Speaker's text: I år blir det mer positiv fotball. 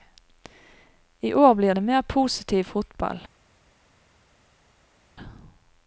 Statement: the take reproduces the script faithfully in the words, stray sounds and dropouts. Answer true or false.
true